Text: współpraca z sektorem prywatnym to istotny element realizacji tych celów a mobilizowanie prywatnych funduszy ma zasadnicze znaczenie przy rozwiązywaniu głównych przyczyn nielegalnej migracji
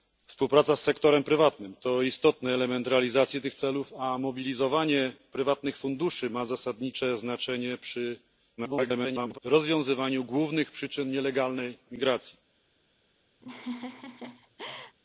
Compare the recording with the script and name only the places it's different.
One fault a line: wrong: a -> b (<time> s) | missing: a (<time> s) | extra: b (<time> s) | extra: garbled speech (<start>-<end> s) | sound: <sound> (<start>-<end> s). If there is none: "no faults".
extra: garbled speech (8.6-9.4 s)
sound: laugh (13.4-15.0 s)